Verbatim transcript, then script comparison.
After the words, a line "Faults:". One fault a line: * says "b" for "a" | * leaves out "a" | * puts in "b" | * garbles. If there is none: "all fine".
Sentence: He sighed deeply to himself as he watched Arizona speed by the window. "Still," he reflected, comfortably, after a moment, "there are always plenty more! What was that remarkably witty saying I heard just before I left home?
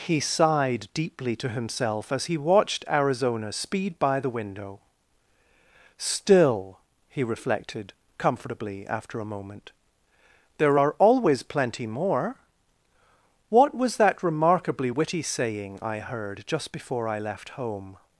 He sighed deeply to himself as he watched Arizona speed by the window. "Still," he reflected, comfortably, after a moment, "there are always plenty more! What was that remarkably witty saying I heard just before I left home?
Faults:
all fine